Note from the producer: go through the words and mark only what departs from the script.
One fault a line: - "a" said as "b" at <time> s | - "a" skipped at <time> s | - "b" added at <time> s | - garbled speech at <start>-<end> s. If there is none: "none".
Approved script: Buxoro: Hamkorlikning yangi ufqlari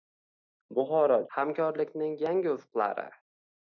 none